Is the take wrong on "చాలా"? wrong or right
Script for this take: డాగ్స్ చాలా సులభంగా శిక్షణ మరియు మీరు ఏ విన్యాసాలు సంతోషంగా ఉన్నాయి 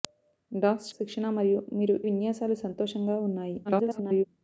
wrong